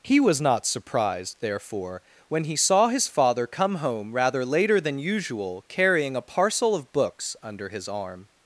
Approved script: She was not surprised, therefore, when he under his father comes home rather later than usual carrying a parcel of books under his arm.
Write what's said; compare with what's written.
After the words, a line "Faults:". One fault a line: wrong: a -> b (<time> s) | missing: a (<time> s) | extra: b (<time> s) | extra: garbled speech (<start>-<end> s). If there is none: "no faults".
He was not surprised, therefore, when he saw his father come home rather later than usual carrying a parcel of books under his arm.
Faults:
wrong: She -> He (0.0 s)
wrong: under -> saw (2.5 s)
wrong: comes -> come (3.5 s)